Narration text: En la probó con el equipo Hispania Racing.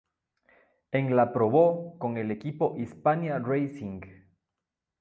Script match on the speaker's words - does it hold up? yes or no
yes